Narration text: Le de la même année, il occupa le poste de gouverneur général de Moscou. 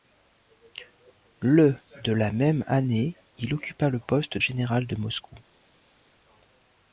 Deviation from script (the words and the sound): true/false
true